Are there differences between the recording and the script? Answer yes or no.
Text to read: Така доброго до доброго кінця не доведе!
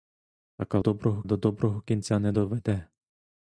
no